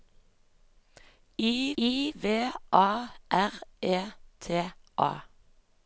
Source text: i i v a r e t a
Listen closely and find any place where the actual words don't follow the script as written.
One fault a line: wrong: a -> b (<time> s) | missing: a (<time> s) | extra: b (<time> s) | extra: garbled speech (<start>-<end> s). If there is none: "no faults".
no faults